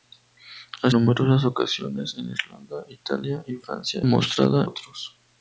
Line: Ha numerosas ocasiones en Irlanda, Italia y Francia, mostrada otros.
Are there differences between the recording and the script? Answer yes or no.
no